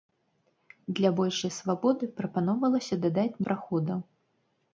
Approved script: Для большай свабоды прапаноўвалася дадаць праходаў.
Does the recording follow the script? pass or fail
pass